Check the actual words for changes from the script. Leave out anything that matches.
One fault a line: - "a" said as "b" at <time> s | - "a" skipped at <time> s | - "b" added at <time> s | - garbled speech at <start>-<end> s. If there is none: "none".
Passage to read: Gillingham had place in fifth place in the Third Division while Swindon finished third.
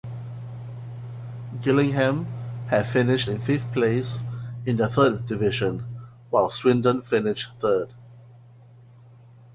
- "place" said as "finished" at 2.9 s